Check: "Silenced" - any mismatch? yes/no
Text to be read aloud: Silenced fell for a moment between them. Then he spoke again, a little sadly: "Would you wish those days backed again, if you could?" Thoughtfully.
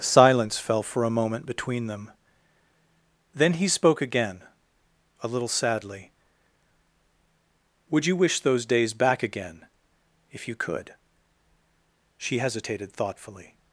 yes